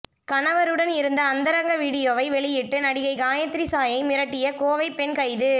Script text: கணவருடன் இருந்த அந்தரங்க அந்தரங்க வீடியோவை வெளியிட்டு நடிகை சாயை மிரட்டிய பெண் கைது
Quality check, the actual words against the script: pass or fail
fail